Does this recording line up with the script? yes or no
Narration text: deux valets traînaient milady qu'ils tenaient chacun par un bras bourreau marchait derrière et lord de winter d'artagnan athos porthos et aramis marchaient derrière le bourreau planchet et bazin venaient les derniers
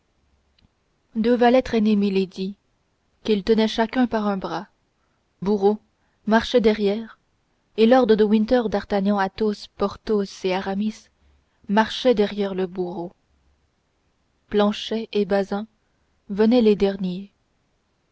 yes